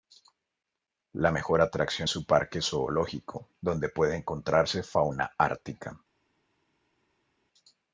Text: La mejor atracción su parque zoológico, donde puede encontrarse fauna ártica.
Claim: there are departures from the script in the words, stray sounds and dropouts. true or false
false